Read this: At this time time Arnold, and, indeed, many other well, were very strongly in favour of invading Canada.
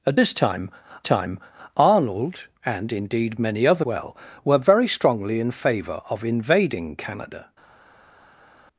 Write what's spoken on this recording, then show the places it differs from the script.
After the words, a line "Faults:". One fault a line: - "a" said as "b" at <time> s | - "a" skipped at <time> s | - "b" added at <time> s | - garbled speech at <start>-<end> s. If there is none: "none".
At this time time Arnold, and, indeed, many other well, were very strongly in favour of invading Canada.
Faults:
none